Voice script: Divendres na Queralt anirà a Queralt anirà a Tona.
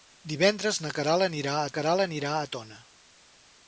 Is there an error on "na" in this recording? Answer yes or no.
no